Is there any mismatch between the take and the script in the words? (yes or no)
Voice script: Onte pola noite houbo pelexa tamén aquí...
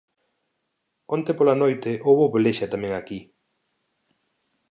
no